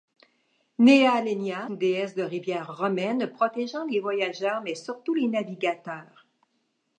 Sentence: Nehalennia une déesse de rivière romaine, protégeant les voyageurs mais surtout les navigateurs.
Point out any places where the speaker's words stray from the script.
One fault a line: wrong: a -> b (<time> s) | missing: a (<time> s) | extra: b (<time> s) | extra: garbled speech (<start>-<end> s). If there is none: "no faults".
no faults